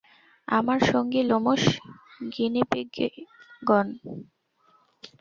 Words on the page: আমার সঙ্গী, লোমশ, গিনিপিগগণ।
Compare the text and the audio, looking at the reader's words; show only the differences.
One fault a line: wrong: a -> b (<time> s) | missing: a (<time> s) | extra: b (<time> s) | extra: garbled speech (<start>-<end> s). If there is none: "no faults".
no faults